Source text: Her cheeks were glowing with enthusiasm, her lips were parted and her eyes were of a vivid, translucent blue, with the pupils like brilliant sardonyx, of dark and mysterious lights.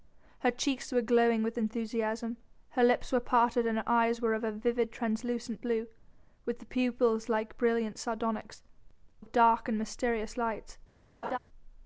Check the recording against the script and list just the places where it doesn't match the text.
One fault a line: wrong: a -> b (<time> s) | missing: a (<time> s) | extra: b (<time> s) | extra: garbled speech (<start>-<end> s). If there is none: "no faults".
no faults